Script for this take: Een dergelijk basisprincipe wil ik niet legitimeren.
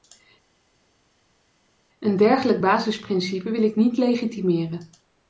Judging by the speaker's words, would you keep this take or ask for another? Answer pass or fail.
pass